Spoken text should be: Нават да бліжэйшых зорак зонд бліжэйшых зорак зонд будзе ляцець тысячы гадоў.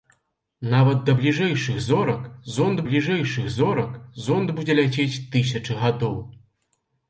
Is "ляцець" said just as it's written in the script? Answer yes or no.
yes